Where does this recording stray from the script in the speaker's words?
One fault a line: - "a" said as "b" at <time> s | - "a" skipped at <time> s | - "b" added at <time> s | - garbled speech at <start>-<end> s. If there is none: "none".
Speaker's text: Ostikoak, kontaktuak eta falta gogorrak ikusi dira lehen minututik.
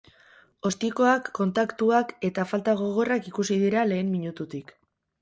none